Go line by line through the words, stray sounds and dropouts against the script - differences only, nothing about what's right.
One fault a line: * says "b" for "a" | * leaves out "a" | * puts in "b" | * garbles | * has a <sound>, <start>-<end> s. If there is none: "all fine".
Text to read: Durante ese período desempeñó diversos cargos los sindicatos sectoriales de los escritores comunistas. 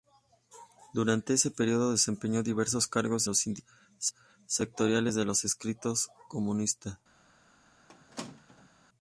* has a squeak, 7.9-8.7 s